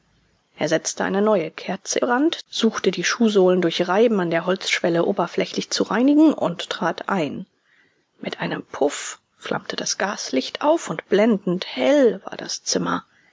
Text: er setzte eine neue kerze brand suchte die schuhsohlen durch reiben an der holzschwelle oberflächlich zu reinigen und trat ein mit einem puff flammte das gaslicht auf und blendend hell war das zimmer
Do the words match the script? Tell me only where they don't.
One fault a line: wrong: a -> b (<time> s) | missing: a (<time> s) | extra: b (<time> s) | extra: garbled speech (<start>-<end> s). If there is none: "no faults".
no faults